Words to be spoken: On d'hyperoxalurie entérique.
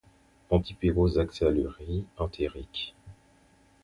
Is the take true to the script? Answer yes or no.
yes